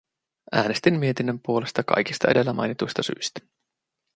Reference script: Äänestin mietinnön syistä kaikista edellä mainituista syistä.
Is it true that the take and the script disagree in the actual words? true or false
true